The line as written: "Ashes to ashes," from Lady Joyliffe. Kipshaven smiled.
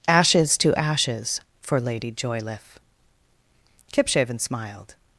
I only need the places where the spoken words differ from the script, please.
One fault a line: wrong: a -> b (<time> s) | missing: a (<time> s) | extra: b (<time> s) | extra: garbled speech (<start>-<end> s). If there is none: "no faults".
wrong: from -> for (1.6 s)